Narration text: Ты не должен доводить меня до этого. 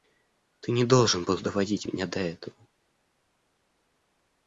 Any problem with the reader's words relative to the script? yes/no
yes